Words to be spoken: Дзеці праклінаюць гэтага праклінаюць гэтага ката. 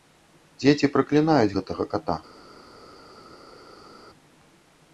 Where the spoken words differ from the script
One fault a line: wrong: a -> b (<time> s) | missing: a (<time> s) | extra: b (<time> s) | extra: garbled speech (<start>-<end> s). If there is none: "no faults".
missing: праклінаюць гэтага (1.8 s)